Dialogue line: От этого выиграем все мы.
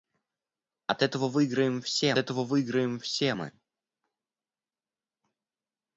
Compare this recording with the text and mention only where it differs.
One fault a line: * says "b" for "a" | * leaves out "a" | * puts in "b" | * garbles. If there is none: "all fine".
* puts in "этого выиграем все"